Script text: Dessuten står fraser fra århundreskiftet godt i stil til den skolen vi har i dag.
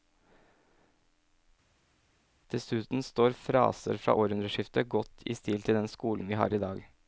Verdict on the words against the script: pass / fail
pass